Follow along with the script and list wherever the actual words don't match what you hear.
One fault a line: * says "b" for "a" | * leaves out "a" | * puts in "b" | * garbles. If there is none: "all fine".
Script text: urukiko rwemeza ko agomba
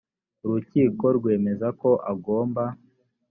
all fine